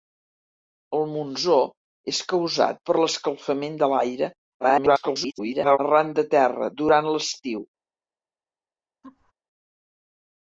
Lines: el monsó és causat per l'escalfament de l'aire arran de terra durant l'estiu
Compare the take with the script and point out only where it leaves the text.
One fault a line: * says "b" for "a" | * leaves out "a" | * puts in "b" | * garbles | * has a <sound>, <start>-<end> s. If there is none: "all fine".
* garbles
* has a laugh, 9.0-9.3 s